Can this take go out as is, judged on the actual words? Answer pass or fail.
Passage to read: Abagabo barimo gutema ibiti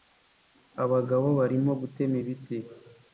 pass